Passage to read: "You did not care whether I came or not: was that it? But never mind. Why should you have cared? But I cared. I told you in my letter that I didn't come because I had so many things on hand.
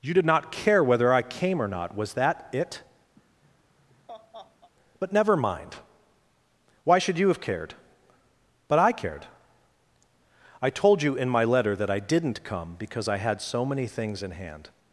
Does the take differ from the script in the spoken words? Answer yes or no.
yes